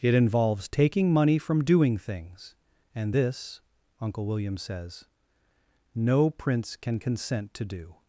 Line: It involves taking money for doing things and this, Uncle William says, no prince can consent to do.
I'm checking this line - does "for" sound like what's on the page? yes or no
no